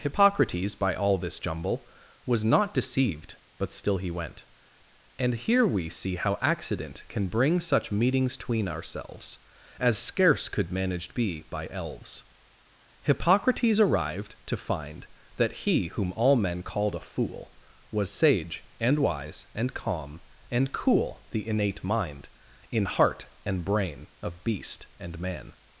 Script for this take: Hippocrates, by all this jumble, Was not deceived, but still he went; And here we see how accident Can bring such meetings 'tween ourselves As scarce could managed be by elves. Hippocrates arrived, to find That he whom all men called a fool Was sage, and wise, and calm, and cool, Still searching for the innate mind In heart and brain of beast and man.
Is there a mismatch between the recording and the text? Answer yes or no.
yes